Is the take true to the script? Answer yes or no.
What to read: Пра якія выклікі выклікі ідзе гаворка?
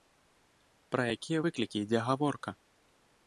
no